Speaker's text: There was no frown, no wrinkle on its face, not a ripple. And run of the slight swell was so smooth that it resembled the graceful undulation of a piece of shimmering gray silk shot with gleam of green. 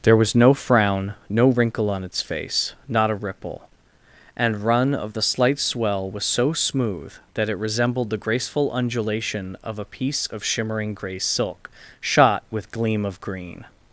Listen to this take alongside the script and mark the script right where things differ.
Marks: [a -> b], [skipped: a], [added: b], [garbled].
There was no frown, no wrinkle on its face, not a ripple. And run of the slight swell was so smooth that it resembled the graceful undulation of a piece of shimmering gray silk shot with gleam of green.